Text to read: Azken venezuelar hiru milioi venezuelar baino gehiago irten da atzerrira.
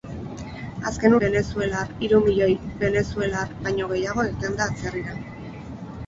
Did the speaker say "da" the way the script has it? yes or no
yes